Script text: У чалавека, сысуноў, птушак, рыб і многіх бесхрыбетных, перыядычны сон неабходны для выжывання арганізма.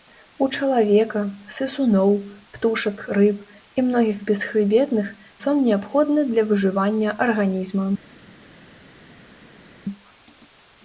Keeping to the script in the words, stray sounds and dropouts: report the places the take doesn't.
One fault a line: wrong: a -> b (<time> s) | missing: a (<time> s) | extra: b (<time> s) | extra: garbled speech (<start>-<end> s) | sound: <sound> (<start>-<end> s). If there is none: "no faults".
missing: перыядычны (5.1 s)